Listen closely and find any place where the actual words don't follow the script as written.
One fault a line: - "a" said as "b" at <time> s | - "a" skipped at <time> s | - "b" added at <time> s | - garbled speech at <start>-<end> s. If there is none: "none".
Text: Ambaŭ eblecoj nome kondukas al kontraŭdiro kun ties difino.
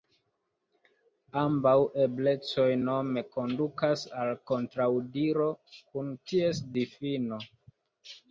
none